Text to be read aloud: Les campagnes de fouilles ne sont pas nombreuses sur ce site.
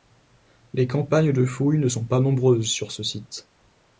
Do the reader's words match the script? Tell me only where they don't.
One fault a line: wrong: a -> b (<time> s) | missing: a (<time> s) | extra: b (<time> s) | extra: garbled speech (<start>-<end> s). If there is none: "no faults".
no faults